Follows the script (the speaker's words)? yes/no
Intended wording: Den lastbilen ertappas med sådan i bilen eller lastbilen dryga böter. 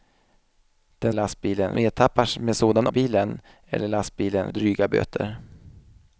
yes